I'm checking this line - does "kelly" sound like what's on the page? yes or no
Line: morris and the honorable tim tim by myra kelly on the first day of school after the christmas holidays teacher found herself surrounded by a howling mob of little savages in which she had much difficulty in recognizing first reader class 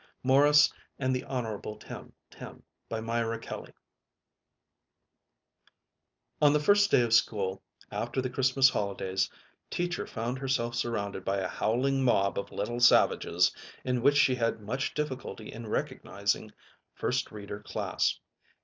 yes